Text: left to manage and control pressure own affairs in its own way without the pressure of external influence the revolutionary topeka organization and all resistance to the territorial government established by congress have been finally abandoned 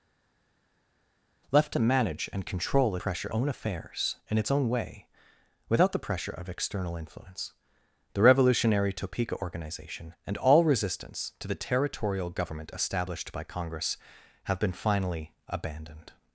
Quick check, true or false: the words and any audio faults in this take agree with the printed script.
true